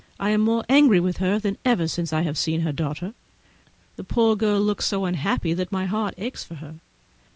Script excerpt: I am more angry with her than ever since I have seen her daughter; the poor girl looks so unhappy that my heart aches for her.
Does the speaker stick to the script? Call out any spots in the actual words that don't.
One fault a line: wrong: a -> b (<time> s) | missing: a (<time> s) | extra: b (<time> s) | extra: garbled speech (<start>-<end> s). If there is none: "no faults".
no faults